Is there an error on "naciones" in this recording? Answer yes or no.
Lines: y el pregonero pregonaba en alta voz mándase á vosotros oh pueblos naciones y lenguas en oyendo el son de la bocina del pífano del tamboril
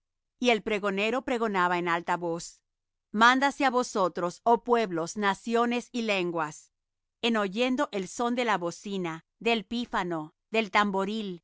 no